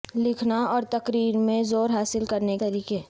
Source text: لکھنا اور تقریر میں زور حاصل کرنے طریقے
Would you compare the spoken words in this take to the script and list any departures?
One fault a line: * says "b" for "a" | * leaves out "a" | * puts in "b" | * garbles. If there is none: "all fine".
all fine